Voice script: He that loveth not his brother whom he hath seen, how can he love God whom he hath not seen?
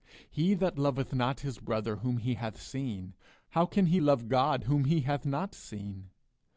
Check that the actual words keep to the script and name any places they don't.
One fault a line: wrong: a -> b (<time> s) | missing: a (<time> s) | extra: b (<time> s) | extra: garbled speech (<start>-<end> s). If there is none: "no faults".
no faults